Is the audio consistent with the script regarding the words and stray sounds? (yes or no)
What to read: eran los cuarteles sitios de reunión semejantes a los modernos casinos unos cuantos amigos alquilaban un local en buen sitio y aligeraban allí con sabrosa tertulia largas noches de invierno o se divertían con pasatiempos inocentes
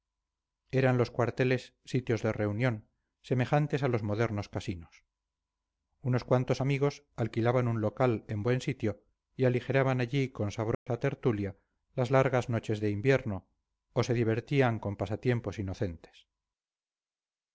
no